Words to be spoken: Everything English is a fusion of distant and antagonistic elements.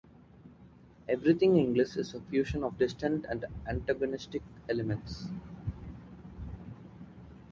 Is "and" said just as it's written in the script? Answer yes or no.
yes